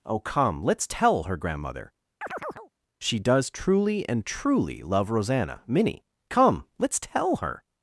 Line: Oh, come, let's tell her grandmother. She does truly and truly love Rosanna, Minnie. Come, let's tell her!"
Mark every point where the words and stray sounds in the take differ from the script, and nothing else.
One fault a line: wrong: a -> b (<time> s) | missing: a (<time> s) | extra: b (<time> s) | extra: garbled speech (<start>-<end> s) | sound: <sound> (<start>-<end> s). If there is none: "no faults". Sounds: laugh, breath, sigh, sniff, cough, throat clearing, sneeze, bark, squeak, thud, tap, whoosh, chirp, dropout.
sound: chirp (2.2-2.7 s)